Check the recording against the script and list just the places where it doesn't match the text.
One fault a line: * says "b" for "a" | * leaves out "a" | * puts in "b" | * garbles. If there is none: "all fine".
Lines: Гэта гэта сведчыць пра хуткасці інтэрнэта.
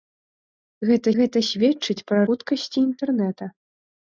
all fine